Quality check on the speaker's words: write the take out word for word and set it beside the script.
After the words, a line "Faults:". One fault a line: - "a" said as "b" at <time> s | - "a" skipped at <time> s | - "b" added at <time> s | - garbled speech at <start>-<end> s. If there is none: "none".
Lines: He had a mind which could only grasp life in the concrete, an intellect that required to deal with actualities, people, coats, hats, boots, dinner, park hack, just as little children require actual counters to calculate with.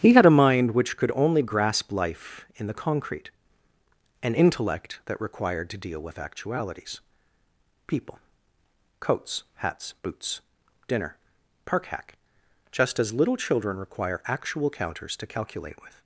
He had a mind which could only grasp life in the concrete, an intellect that required to deal with actualities, people, coats, hats, boots, dinner, park hack, just as little children require actual counters to calculate with.
Faults:
none